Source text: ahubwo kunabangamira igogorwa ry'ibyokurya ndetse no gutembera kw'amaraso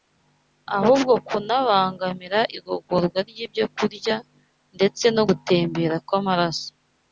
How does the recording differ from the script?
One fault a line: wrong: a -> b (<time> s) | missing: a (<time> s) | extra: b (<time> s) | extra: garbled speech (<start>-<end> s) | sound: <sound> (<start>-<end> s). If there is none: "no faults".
no faults